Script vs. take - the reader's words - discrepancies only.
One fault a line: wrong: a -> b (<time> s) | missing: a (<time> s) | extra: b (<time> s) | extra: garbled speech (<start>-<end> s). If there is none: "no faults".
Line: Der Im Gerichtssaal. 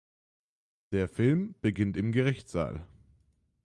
extra: Film beginnt (1.0 s)